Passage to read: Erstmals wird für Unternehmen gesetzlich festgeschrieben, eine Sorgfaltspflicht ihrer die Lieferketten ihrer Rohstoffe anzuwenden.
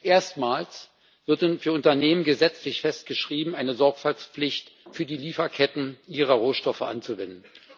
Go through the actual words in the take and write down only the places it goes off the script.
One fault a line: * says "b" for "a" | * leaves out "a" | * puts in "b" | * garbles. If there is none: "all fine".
* says "für" for "ihrer"